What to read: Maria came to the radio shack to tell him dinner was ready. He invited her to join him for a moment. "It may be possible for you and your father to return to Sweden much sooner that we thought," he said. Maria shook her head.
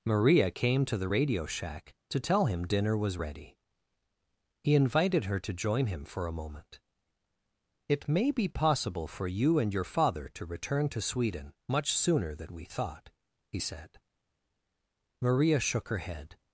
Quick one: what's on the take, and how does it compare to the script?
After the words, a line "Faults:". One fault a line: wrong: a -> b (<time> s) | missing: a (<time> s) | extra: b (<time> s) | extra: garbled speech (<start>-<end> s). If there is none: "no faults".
Maria came to the radio shack to tell him dinner was ready. He invited her to join him for a moment. "It may be possible for you and your father to return to Sweden much sooner than we thought," he said. Maria shook her head.
Faults:
wrong: that -> than (12.3 s)